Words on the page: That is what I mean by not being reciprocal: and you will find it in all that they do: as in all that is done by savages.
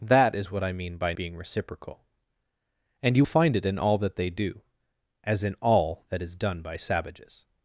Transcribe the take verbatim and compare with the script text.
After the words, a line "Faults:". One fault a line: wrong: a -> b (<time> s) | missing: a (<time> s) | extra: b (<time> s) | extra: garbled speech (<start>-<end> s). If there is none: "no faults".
That is what I mean by being reciprocal: and you find it in all that they do: as in all that is done by savages.
Faults:
missing: not (1.1 s)
missing: will (3.2 s)